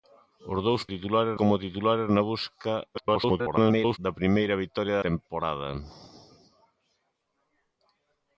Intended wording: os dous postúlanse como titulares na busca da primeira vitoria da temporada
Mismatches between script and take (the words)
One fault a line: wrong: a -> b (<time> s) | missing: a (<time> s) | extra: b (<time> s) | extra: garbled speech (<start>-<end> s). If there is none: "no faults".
wrong: postúlanse -> titulares (0.9 s)
extra: garbled speech (2.9-4.0 s)
missing: da (5.0 s)